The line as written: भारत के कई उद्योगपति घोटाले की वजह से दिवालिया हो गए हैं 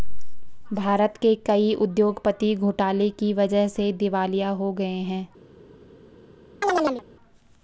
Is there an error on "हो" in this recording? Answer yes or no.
no